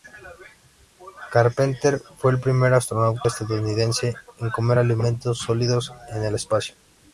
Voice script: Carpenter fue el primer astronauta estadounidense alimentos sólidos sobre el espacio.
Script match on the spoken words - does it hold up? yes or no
no